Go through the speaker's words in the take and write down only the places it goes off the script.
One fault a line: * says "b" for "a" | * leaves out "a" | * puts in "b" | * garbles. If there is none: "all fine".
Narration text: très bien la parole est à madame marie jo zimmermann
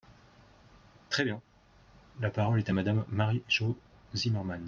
all fine